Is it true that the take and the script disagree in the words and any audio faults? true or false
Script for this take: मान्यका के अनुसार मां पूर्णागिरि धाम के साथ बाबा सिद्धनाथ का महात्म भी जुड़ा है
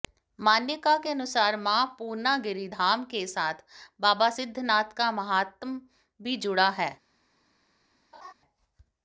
true